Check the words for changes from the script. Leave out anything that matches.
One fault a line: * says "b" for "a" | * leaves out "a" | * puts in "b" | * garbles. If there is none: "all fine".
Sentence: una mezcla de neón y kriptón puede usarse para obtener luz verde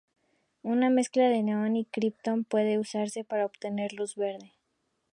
all fine